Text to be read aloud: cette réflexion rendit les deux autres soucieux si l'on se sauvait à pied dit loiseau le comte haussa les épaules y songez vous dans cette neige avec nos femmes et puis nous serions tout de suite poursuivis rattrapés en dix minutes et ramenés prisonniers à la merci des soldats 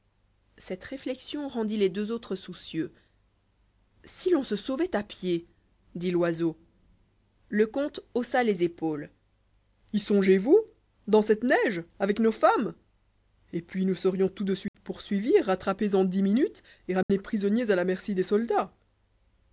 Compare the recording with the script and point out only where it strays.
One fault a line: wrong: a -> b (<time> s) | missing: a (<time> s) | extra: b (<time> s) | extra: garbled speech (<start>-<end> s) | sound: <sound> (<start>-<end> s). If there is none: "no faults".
sound: dropout (14.7-14.7 s)
sound: dropout (17.0-17.1 s)